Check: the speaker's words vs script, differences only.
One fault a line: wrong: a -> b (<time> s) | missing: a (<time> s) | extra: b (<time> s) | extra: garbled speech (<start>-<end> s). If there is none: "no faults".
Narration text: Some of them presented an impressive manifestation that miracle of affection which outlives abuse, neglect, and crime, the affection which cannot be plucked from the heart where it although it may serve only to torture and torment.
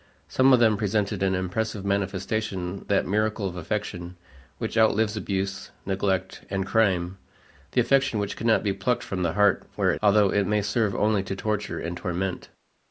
no faults